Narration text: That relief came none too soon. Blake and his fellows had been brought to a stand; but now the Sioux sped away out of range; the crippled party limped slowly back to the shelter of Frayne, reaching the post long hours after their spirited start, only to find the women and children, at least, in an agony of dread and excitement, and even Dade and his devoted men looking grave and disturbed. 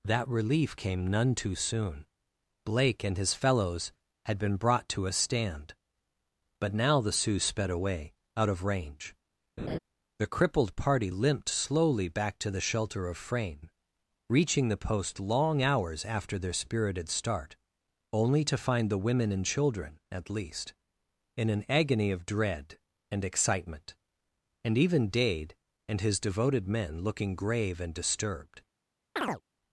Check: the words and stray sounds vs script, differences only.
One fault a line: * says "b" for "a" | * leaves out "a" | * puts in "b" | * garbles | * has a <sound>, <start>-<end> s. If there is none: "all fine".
* has a laugh, 9.6-9.8 s
* has a chirp, 29.2-29.4 s